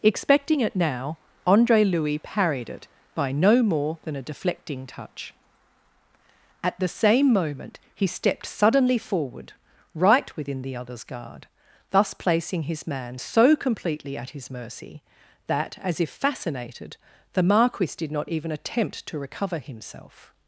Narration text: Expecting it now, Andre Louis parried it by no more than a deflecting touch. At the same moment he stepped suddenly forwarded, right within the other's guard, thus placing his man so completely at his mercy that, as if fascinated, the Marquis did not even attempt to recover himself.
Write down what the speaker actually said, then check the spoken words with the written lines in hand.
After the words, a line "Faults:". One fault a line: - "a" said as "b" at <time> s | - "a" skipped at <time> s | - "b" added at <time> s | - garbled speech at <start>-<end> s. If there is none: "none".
Expecting it now, Andre Louis parried it by no more than a deflecting touch. At the same moment he stepped suddenly forward, right within the other's guard, thus placing his man so completely at his mercy that, as if fascinated, the Marquis did not even attempt to recover himself.
Faults:
- "forwarded" said as "forward" at 9.0 s